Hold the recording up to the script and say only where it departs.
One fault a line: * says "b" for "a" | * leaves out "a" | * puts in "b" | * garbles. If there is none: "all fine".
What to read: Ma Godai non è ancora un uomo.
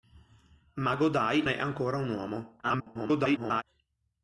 * leaves out "non"
* garbles